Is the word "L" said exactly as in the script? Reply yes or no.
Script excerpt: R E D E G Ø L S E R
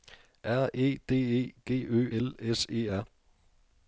yes